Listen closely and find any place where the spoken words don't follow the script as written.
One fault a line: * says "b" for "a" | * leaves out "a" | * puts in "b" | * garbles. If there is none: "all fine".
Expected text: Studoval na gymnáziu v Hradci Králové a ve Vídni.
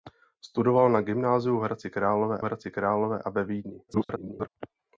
* puts in "Hradci Králové"
* garbles